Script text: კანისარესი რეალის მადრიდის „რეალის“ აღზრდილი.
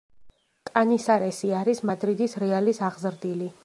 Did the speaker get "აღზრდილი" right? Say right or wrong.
right